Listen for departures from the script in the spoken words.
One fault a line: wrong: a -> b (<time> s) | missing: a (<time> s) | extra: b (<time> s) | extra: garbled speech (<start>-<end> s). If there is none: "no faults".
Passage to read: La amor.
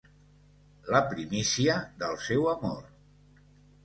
extra: primícia del seu (1.1 s)